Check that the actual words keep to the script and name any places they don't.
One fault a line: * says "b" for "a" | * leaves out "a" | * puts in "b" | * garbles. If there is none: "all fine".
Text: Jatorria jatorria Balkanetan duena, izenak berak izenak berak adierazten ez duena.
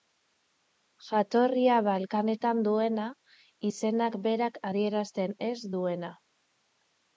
* leaves out "jatorria"
* leaves out "izenak berak"